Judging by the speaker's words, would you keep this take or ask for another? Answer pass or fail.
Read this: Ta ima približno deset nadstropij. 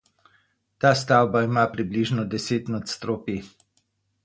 fail